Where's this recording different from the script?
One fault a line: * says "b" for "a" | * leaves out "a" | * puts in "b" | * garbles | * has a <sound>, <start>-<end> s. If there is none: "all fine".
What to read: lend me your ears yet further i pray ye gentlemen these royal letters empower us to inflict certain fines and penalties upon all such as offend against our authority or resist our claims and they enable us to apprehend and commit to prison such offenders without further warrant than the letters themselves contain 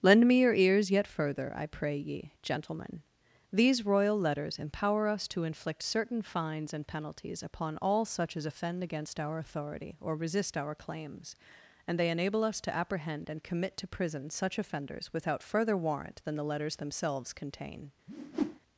* has a whoosh, 18.1-18.6 s